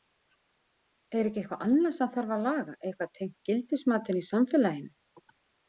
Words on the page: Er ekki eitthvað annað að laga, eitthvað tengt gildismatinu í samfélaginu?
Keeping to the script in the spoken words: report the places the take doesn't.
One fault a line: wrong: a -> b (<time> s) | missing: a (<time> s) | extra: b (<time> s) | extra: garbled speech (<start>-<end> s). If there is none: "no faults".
extra: sem þarf (2.0 s)